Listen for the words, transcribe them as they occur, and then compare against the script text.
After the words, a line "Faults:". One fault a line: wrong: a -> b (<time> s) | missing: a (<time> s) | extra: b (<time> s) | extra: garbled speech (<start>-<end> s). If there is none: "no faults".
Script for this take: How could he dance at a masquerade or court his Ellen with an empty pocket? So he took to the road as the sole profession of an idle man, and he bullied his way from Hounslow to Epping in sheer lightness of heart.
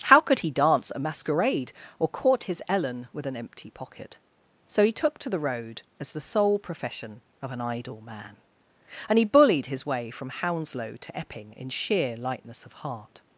How could he dance a masquerade or court his Ellen with an empty pocket? So he took to the road as the sole profession of an idle man, and he bullied his way from Hounslow to Epping in sheer lightness of heart.
Faults:
missing: at (0.9 s)